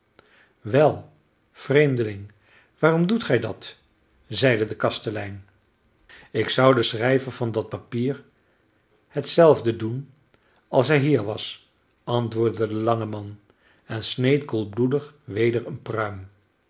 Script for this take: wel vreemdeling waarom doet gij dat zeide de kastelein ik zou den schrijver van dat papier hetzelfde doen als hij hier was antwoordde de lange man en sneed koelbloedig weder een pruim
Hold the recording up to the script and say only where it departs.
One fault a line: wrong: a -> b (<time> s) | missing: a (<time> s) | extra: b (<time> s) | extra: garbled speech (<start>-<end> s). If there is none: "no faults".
no faults